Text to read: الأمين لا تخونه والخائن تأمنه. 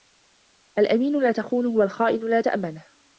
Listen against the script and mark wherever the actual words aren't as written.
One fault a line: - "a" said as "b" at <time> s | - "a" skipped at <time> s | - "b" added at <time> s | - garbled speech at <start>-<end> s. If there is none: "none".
- "لا" added at 2.3 s